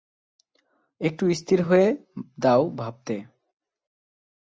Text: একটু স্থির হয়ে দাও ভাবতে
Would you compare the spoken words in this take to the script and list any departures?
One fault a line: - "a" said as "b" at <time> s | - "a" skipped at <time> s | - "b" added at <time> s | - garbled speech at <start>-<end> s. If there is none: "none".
none